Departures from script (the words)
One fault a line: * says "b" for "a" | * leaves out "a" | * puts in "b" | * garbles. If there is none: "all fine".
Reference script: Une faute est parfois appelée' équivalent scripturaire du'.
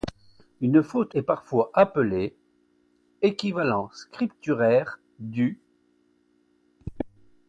all fine